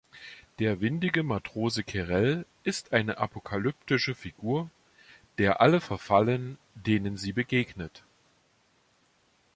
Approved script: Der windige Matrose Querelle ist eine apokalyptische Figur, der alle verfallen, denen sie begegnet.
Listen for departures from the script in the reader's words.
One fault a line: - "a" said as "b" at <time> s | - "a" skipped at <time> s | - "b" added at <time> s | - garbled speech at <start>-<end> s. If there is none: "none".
none